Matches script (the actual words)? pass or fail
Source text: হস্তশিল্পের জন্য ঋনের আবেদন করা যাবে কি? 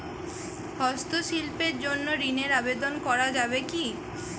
pass